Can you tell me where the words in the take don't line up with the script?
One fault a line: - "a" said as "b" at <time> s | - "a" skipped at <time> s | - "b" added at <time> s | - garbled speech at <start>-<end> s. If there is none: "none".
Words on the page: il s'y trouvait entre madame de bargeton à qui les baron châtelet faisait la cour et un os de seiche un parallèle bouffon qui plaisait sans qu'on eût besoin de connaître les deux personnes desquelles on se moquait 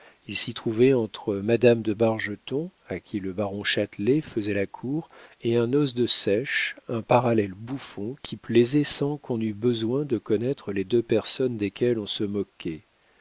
- "les" said as "le" at 3.2 s